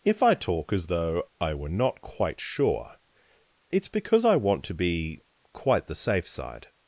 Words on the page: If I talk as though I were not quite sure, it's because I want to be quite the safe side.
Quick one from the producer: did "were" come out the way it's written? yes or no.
yes